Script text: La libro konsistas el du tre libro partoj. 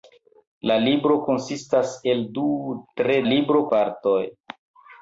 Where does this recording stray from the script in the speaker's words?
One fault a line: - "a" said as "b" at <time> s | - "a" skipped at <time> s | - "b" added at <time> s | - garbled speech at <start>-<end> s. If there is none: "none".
none